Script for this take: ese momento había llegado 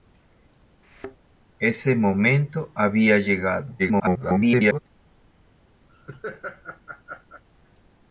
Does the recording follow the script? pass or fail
fail